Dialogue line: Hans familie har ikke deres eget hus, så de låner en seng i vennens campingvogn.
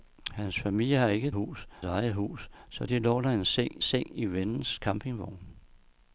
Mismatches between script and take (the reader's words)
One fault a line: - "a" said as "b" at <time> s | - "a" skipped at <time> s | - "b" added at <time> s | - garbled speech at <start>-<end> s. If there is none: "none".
- "deres" said as "hus" at 1.3 s
- "seng" added at 3.8 s